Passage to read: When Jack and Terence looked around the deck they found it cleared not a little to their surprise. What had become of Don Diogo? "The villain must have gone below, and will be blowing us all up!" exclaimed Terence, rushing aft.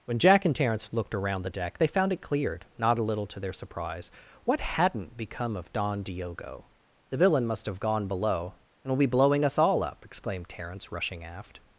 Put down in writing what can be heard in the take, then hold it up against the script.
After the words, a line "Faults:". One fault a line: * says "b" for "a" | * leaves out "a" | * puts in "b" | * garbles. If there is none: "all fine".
When Jack and Terence looked around the deck they found it cleared not a little to their surprise. What hadn't become of Don Diogo? "The villain must have gone below, and will be blowing us all up!" exclaimed Terence, rushing aft.
Faults:
* says "hadn't" for "had"